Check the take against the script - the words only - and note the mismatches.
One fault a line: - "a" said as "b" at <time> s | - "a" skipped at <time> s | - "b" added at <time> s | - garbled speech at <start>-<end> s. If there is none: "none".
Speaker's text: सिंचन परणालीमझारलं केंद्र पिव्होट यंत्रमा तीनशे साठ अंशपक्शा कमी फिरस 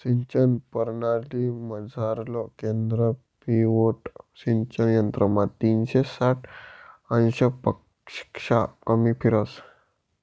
- "सिंचन" added at 4.3 s